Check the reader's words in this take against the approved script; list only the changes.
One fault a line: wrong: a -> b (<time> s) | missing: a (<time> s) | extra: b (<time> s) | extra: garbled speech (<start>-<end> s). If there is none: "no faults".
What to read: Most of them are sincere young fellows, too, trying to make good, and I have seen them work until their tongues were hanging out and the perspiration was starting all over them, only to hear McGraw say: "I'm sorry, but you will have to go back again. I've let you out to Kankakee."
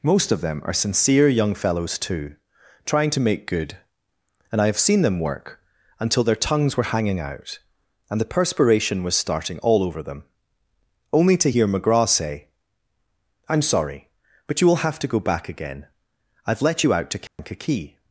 no faults